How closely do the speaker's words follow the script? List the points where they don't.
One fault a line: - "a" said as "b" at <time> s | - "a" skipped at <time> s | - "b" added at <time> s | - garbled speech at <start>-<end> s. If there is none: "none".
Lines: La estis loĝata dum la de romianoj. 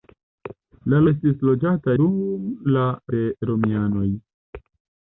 none